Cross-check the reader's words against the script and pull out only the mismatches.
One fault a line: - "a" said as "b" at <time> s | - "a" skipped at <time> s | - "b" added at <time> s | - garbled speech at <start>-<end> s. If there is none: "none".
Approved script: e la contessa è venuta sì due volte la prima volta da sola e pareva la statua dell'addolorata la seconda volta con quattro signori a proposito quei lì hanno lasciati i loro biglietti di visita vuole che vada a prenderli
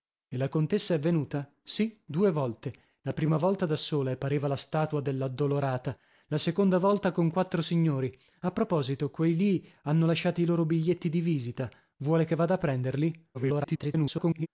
- garbled speech at 13.3-14.5 s